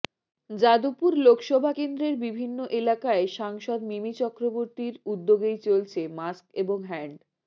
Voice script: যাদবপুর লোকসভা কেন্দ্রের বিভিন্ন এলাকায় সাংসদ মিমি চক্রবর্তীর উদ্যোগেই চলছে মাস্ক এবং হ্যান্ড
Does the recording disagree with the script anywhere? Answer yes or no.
no